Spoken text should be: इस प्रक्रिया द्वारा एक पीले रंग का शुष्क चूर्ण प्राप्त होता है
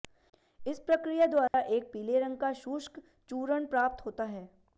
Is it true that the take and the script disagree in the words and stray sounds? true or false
true